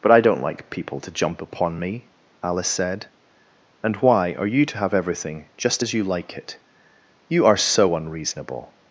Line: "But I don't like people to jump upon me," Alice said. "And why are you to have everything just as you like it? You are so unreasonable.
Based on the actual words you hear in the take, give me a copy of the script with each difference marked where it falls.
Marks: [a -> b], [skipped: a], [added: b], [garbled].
"But I don't like people to jump upon me," Alice said. "And why are you to have everything just as you like it? You are so unreasonable.